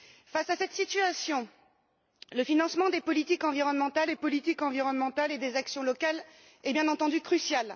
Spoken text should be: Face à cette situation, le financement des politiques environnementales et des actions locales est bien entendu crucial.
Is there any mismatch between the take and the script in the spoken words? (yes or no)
yes